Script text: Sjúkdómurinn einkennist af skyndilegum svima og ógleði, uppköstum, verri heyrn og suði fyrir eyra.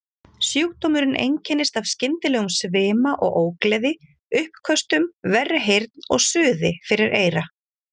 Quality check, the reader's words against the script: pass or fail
pass